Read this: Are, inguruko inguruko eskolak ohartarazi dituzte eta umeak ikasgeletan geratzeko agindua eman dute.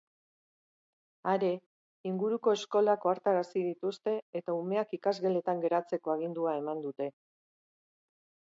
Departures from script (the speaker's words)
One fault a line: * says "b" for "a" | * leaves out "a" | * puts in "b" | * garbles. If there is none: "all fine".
* leaves out "inguruko"